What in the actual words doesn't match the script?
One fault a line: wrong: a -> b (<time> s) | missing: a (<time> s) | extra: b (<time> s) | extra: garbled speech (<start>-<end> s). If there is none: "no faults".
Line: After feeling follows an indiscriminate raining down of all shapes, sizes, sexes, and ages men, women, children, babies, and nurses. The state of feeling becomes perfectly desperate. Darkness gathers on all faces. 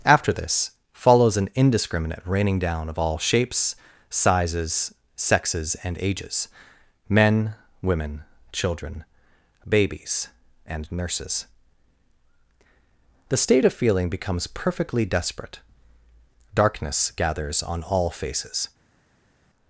wrong: feeling -> this (0.3 s)